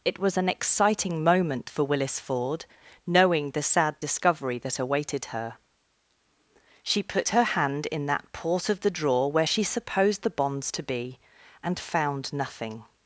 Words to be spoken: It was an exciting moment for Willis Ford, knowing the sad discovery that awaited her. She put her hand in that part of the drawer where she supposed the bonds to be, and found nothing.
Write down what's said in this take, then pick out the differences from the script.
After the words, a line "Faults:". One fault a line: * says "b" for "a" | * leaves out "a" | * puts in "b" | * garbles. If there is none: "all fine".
It was an exciting moment for Willis Ford, knowing the sad discovery that awaited her. She put her hand in that port of the drawer where she supposed the bonds to be, and found nothing.
Faults:
* says "port" for "part"